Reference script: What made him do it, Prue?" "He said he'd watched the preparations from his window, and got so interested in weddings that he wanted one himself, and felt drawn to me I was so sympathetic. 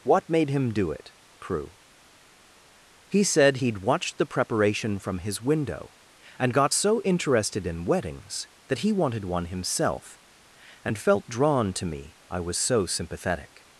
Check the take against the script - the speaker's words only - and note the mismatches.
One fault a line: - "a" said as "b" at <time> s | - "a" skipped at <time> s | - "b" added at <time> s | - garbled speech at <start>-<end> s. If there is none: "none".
- "preparations" said as "preparation" at 4.3 s